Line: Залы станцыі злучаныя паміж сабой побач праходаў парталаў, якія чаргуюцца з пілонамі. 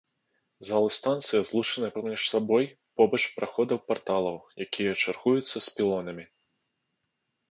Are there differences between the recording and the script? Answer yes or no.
no